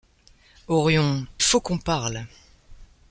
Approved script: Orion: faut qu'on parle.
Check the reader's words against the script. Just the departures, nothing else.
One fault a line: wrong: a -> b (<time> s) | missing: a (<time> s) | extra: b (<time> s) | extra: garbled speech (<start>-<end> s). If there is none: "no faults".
no faults